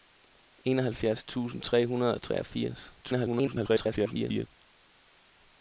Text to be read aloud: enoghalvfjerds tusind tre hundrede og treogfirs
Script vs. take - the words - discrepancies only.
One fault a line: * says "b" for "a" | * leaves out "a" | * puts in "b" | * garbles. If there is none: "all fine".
* garbles